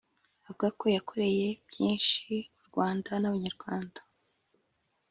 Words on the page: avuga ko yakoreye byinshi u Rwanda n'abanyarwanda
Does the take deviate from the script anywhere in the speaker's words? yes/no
no